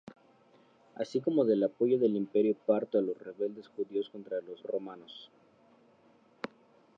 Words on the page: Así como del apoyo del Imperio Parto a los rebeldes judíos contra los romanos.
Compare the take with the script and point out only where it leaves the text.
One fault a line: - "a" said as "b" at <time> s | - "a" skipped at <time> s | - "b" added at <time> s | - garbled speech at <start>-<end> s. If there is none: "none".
none